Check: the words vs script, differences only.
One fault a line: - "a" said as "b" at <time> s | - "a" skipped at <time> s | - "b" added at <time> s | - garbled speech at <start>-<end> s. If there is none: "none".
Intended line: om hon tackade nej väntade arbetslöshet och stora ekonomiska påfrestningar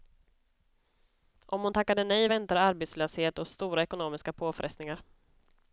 none